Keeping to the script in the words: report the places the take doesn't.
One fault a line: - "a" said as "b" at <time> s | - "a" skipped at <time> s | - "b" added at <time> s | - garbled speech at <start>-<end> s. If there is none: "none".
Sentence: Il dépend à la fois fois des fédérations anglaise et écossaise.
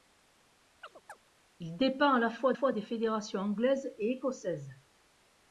none